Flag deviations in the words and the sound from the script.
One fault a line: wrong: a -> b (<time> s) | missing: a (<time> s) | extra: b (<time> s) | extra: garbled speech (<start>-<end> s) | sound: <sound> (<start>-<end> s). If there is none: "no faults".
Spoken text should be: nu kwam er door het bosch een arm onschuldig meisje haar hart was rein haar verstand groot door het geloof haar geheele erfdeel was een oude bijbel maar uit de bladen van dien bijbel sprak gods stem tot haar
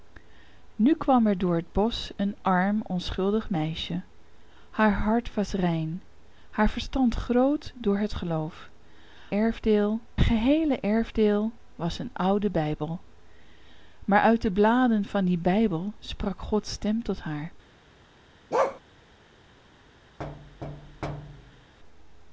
wrong: haar -> erfdeel (9.3 s)
sound: bark (18.5-18.8 s)
sound: thud (20.2-21.7 s)